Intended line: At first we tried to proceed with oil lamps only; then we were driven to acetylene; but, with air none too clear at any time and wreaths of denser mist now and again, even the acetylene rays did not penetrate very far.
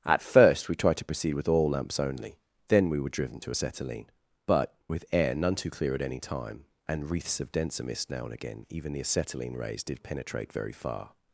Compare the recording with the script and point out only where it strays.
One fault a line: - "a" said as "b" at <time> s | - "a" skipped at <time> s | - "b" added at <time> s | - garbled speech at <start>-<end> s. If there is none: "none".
- "not" skipped at 10.0 s